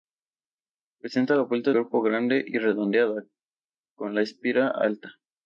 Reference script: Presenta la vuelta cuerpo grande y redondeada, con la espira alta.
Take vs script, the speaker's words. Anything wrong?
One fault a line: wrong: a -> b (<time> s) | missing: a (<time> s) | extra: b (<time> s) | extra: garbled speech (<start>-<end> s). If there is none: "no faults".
no faults